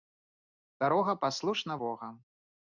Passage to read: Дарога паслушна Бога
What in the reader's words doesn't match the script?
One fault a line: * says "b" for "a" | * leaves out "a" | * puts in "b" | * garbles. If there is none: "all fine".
all fine